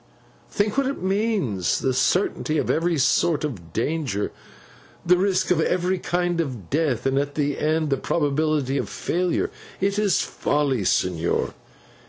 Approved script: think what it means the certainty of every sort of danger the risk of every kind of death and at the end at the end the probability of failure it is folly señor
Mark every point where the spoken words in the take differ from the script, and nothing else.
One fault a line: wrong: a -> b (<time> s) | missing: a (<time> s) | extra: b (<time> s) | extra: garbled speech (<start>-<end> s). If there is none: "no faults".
missing: at the end (7.9 s)